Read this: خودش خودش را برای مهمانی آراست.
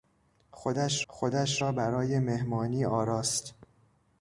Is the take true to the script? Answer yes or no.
yes